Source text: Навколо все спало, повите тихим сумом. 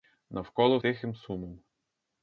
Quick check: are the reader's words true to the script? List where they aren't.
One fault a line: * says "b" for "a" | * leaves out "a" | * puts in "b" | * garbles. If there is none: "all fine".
* leaves out "все спало повите"